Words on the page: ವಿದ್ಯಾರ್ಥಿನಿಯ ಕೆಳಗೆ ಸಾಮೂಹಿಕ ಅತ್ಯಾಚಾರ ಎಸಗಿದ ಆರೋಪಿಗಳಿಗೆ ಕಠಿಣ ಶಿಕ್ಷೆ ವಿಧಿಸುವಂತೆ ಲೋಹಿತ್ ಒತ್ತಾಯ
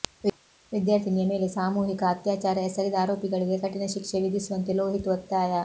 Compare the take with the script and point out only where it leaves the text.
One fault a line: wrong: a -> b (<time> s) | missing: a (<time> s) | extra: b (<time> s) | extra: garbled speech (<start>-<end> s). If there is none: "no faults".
wrong: ಕೆಳಗೆ -> ಮೇಲೆ (1.3 s)